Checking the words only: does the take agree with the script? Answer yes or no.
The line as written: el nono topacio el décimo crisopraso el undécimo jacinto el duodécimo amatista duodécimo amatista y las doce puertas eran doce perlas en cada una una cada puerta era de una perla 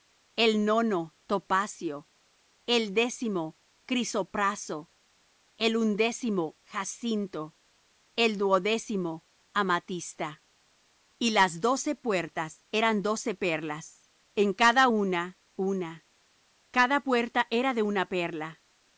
no